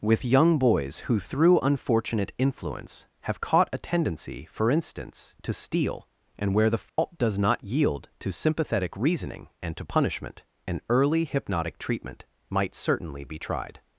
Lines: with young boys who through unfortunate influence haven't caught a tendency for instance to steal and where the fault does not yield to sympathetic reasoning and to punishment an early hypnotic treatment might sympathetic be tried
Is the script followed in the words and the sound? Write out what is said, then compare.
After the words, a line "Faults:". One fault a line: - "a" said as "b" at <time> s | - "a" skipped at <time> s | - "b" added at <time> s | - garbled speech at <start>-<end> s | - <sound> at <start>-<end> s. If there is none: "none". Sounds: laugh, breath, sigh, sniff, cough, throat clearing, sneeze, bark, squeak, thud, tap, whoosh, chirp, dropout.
with young boys who through unfortunate influence have caught a tendency for instance to steal and where the fault does not yield to sympathetic reasoning and to punishment an early hypnotic treatment might certainly be tried
Faults:
- "haven't" said as "have" at 3.3 s
- dropout at 6.9-7.0 s
- "sympathetic" said as "certainly" at 12.7 s